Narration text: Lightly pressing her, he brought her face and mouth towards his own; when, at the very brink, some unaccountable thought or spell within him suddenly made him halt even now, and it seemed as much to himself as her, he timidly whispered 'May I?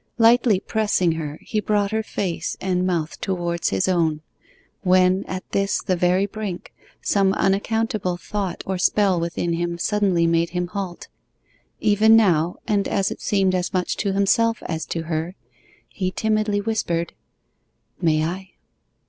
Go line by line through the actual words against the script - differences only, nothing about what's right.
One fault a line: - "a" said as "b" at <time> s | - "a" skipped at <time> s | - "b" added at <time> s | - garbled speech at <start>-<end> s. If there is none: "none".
- "this" added at 5.5 s
- "as" added at 12.9 s
- "to" added at 14.9 s